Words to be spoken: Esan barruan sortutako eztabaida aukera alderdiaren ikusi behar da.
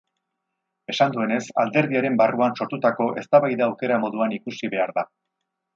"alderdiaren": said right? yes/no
no